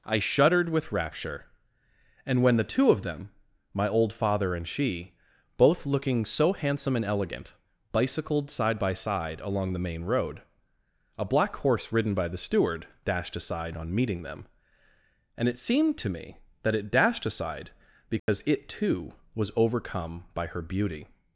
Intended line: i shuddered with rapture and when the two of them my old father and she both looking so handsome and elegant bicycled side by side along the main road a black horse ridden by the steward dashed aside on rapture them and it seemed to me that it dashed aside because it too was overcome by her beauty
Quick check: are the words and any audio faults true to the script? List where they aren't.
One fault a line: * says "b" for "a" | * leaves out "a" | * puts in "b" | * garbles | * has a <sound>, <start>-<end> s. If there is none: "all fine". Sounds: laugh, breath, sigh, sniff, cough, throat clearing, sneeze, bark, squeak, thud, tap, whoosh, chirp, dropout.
* says "meeting" for "rapture"
* has a dropout, 18.2-18.3 s